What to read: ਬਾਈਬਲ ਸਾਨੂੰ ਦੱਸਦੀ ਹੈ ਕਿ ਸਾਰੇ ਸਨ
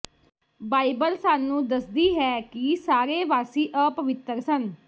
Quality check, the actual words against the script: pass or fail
fail